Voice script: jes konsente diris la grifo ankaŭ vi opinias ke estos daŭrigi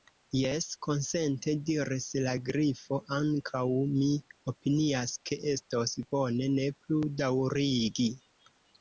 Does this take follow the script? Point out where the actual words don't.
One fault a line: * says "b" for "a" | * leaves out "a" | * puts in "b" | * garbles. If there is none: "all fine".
* says "mi" for "vi"
* puts in "bone ne plu"